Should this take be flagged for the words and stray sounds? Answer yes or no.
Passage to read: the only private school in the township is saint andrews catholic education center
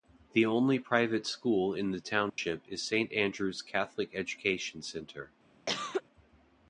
yes